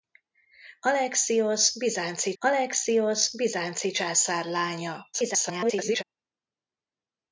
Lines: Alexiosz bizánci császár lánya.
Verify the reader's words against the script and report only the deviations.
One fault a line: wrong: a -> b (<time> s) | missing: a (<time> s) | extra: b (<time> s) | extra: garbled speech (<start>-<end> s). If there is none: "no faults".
extra: alexiosz bizánci (2.4 s)
extra: garbled speech (5.1-6.0 s)